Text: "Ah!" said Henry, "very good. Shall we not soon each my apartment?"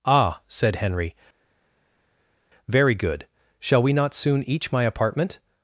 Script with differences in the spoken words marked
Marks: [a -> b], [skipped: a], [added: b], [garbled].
"Ah!" said Henry, "very good. Shall we not soon each my apartment?"